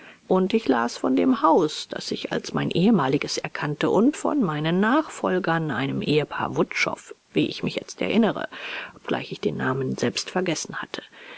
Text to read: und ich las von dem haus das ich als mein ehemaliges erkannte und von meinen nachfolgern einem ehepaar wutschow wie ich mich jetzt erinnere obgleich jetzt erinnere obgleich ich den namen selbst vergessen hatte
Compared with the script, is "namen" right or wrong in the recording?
right